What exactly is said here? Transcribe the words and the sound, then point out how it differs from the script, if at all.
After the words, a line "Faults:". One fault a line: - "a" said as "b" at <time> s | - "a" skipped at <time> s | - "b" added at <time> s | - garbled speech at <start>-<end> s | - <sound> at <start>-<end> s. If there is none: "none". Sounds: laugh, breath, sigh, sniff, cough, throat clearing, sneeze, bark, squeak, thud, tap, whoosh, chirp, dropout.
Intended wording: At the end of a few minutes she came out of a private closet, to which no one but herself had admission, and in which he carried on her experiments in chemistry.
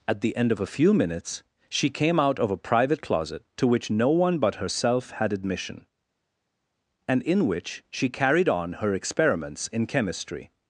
At the end of a few minutes she came out of a private closet, to which no one but herself had admission, and in which she carried on her experiments in chemistry.
Faults:
- "he" said as "she" at 7.9 s